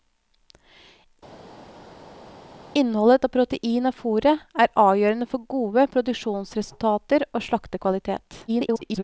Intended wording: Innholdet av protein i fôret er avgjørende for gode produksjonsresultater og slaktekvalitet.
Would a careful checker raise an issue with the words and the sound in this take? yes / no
yes